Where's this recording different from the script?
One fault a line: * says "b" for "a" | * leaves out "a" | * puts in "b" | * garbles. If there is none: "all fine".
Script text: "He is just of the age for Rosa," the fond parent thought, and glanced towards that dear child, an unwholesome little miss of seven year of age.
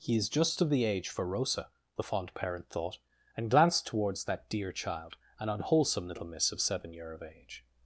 all fine